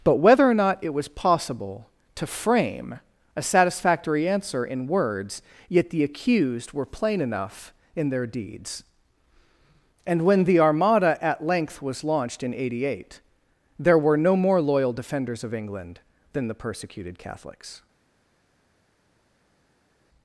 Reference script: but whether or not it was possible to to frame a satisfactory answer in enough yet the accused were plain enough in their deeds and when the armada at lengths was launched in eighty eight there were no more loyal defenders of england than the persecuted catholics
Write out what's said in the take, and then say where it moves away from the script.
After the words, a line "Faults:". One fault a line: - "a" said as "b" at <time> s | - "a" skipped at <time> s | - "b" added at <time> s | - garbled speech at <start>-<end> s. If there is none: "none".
but whether or not it was possible to frame a satisfactory answer in words yet the accused were plain enough in their deeds and when the armada at length was launched in eighty eight there were no more loyal defenders of england than the persecuted catholics
Faults:
- "to" skipped at 2.3 s
- "enough" said as "words" at 4.9 s
- "lengths" said as "length" at 11.4 s